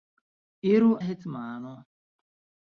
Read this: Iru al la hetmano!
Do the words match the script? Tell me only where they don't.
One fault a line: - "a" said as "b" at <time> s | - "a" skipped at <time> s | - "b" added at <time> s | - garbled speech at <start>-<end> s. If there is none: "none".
- "al la" skipped at 0.9 s